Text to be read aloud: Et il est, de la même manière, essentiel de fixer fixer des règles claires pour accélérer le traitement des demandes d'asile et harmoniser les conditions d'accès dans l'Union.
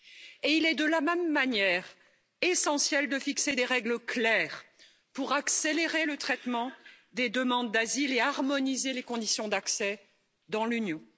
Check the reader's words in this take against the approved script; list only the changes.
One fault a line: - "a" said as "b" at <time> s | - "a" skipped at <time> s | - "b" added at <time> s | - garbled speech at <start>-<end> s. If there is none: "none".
- "fixer" skipped at 3.6 s